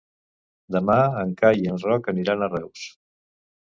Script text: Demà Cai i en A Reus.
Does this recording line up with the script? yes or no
no